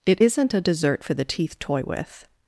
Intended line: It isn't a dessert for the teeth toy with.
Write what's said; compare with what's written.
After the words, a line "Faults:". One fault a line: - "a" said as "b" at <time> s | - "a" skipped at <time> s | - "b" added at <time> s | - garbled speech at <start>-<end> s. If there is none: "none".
It isn't a dessert for the teeth toy with.
Faults:
none